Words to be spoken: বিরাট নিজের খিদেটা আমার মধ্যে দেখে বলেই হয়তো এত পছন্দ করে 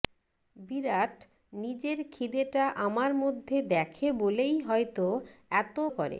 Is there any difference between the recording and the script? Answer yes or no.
yes